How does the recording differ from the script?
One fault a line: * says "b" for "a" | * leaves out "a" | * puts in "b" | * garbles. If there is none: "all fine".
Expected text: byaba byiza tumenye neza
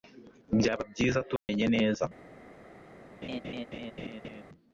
all fine